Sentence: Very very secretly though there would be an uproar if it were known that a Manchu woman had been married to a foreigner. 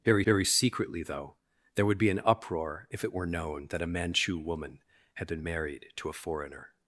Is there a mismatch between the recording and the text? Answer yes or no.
no